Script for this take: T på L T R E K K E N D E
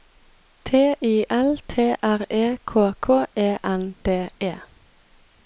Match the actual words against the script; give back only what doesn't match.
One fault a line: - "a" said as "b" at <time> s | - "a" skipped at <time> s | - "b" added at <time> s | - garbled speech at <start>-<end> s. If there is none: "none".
- "på" said as "I" at 1.0 s